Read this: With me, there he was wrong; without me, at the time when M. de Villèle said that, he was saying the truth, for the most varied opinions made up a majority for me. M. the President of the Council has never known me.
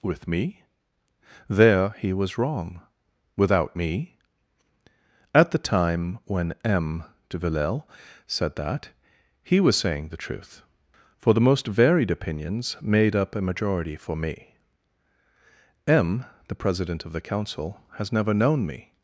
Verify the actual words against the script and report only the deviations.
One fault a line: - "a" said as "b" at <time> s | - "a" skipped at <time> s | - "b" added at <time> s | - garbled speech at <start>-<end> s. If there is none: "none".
none